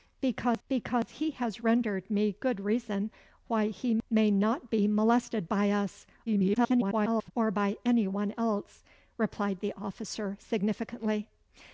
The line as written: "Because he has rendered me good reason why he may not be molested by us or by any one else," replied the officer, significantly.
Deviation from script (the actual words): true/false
true